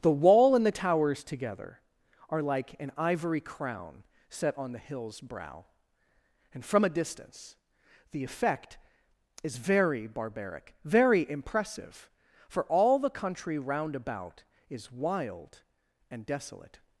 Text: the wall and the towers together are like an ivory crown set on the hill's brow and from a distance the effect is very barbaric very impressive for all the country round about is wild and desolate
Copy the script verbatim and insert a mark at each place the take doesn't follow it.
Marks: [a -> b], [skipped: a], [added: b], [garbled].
the wall and the towers together are like an ivory crown set on the hill's brow and from a distance the effect is very barbaric very impressive for all the country round about is wild and desolate